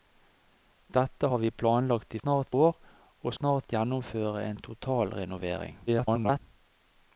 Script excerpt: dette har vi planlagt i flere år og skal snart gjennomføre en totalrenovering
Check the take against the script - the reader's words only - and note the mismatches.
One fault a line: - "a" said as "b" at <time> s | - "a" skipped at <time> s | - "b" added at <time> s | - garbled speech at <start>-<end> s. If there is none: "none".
- "flere" said as "snart" at 2.2 s
- "skal" skipped at 3.3 s
- garbled speech at 5.9-6.4 s